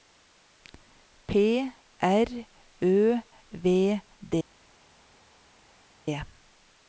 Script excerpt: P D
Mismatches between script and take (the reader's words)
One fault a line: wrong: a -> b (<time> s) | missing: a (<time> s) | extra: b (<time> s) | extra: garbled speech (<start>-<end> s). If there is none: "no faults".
extra: R Ø V (2.0 s)